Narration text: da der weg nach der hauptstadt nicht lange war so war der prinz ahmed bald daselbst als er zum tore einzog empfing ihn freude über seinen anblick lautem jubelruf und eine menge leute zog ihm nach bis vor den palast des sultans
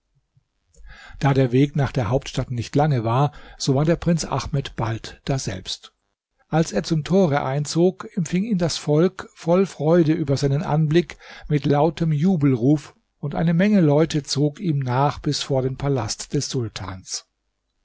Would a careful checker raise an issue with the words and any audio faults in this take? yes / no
yes